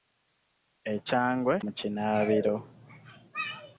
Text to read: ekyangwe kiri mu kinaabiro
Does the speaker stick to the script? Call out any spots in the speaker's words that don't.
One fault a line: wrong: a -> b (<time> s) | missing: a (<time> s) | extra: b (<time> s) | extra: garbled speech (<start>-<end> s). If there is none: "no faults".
missing: kiri (1.5 s)